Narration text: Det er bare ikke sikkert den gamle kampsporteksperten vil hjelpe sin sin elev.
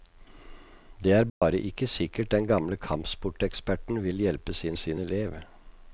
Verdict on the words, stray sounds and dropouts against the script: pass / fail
fail